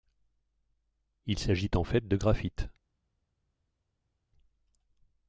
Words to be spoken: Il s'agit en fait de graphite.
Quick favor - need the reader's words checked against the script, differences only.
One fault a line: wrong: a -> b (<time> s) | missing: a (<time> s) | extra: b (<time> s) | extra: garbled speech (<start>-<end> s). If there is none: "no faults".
no faults